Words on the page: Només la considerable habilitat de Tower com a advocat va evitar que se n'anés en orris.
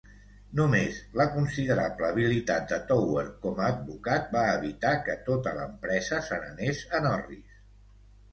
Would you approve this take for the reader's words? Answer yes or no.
no